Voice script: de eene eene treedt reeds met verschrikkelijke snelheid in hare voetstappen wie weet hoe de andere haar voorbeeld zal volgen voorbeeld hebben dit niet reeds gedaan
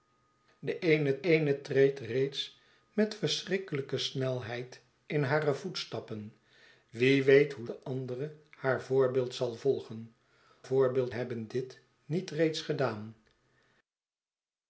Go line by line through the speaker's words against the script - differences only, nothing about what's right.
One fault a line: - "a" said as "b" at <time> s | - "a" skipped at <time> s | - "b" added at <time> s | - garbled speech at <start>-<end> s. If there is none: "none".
none